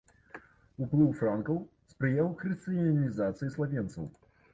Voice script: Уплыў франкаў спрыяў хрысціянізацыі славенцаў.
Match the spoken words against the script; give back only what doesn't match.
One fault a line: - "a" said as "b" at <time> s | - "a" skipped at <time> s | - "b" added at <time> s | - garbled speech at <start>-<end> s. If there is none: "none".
none